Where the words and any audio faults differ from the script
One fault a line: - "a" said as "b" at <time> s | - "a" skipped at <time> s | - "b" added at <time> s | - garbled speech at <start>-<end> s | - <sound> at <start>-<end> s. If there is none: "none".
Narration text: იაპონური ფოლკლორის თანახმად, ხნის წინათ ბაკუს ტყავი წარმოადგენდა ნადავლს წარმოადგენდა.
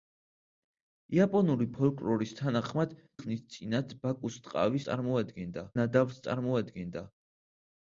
none